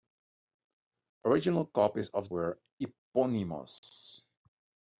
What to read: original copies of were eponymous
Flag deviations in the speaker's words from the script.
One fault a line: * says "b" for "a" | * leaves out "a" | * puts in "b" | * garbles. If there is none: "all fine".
all fine